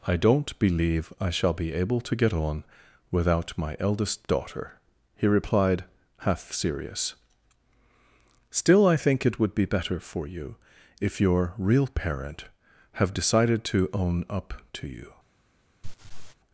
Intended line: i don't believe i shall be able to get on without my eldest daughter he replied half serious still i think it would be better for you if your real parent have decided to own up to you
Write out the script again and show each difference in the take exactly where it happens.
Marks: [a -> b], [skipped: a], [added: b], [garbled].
i don't believe i shall be able to get on without my eldest daughter he replied half serious still i think it would be better for you if your real parent have decided to own up to you